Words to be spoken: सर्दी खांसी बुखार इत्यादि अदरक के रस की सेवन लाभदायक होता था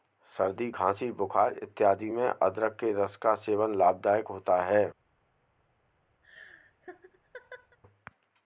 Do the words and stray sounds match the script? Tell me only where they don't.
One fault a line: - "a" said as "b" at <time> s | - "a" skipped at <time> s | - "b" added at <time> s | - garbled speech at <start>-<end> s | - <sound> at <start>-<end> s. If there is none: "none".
- "में" added at 2.1 s
- "की" said as "का" at 3.2 s
- "था" said as "है" at 4.6 s
- laugh at 6.2-7.8 s